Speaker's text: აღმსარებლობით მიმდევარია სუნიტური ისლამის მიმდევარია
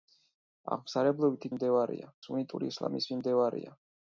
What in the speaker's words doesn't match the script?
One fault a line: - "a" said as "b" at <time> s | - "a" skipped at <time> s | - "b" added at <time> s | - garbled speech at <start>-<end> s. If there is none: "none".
none